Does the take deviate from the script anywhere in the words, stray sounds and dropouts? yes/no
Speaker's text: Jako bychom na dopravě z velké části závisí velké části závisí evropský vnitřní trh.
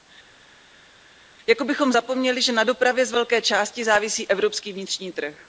yes